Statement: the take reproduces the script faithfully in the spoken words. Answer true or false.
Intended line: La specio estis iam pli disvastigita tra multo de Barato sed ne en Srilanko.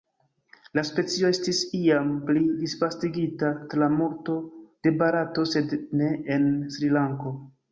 true